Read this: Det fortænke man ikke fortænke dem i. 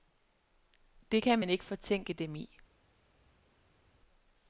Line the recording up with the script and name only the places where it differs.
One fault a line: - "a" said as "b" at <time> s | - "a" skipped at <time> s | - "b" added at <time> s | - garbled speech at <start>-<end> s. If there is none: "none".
- "fortænke" said as "kan" at 1.2 s